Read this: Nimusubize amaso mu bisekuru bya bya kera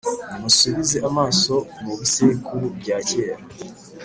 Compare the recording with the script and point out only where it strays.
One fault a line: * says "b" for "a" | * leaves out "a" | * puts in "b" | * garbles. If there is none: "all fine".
* leaves out "bya"